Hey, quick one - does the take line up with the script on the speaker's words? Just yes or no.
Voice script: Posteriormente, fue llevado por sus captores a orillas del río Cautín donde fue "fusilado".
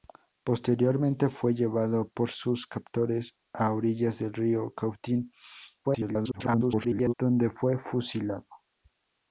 no